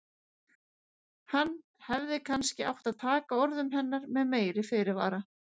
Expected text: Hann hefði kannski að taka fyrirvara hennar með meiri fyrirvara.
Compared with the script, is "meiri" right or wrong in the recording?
right